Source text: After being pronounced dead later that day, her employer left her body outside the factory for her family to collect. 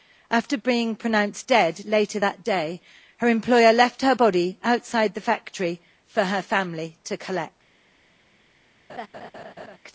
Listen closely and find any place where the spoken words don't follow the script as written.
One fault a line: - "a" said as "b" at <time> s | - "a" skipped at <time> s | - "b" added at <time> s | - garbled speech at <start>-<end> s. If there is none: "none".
none